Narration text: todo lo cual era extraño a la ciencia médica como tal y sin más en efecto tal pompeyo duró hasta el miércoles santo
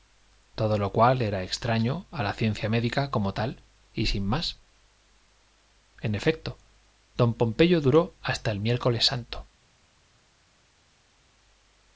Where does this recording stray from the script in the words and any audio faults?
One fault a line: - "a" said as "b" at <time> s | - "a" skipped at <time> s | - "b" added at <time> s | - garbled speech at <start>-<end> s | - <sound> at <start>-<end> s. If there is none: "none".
- "tal" said as "don" at 7.2 s